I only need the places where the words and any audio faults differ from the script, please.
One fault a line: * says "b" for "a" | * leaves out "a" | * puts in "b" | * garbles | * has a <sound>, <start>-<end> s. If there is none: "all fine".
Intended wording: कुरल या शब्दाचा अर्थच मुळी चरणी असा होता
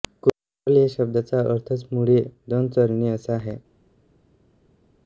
* puts in "दोन"
* says "आहे" for "होता"